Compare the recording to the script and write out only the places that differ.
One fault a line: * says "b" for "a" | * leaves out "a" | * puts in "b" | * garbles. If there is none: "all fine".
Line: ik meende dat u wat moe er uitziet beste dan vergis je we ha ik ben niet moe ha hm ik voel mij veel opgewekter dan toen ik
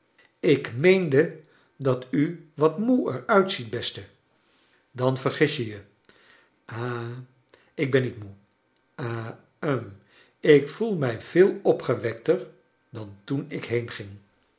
* says "je" for "we"